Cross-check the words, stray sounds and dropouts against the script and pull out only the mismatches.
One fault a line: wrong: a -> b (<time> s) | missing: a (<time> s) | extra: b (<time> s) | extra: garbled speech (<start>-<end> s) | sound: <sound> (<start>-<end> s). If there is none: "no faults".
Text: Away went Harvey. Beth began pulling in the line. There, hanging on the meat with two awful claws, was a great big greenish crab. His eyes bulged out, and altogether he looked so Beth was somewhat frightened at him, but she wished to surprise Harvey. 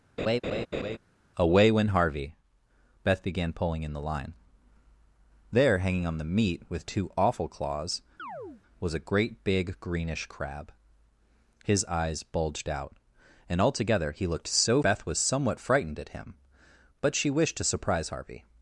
sound: laugh (0.2-1.0 s)
sound: chirp (8.2-8.6 s)